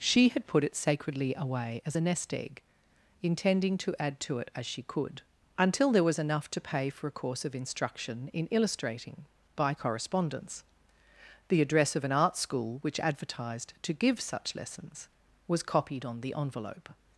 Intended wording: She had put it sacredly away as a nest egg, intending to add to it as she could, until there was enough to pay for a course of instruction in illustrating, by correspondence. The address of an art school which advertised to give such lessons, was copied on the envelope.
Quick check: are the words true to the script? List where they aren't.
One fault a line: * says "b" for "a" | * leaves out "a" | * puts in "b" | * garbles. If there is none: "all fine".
all fine